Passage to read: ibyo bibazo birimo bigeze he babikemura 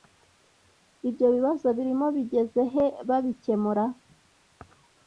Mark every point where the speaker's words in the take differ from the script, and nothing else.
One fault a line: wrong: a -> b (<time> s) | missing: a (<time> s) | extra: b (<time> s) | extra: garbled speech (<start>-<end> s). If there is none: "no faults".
no faults